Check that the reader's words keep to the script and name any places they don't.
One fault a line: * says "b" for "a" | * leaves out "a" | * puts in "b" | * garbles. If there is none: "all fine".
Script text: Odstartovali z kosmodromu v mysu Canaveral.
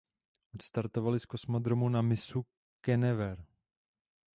* says "na" for "v"